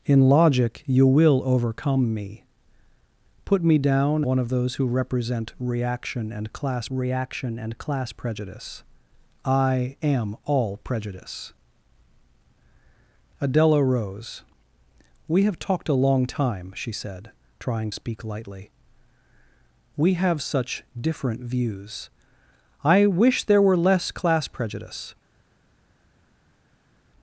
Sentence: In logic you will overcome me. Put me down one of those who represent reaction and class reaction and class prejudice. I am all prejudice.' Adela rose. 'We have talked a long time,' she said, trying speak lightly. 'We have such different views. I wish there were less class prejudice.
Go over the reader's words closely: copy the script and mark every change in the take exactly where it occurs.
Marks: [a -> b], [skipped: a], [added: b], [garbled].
In logic you will overcome me. Put me down one of those who represent reaction and class reaction and class prejudice. I am all prejudice.' Adela rose. 'We have talked a long time,' she said, trying speak lightly. 'We have such different views. I wish there were less class prejudice.